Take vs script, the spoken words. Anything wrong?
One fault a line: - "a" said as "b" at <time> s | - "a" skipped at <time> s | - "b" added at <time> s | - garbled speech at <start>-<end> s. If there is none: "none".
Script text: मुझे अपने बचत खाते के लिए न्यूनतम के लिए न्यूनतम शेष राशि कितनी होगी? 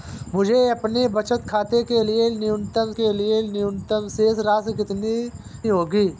none